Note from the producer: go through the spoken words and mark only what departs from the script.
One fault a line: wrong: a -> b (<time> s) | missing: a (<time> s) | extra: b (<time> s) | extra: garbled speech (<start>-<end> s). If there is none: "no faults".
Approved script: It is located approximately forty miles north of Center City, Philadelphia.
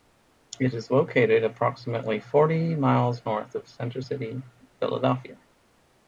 no faults